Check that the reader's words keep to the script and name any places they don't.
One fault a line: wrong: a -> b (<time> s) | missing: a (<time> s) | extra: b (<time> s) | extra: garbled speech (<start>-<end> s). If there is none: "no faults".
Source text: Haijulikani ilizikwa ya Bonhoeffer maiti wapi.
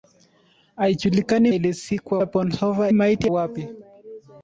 no faults